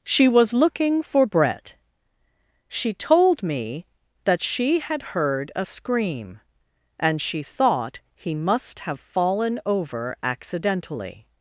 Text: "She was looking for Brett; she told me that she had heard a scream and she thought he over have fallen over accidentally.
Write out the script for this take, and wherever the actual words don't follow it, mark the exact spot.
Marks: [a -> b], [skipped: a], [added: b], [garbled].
"She was looking for Brett; she told me that she had heard a scream and she thought he [over -> must] have fallen over accidentally.